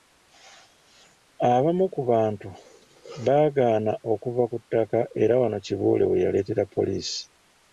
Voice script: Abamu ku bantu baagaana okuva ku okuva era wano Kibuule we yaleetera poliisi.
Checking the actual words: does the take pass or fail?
fail